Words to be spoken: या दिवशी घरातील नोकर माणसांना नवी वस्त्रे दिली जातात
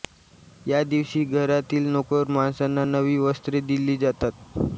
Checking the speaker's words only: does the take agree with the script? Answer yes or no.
yes